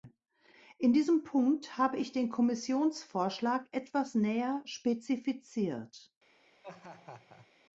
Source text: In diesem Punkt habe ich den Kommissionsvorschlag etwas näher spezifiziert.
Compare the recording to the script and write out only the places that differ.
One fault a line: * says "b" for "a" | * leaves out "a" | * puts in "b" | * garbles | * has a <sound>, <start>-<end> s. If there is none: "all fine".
* has a laugh, 6.6-7.5 s